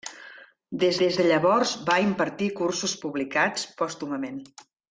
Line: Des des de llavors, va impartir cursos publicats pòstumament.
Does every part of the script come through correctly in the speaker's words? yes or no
yes